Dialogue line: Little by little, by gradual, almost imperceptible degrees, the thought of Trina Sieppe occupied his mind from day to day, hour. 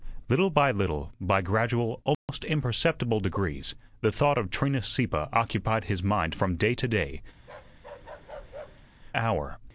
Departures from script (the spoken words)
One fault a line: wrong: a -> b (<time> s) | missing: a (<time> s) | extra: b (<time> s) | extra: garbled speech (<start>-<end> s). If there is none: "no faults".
no faults